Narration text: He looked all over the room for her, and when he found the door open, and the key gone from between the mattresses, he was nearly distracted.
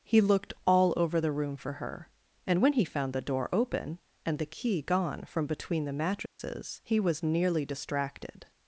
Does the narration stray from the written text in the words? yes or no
no